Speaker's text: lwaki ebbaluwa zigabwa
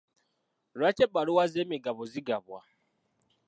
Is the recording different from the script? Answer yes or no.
yes